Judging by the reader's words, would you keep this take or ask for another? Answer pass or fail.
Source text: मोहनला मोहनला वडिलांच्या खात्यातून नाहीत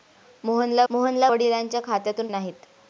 pass